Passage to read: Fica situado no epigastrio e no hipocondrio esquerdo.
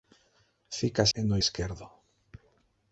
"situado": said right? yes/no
no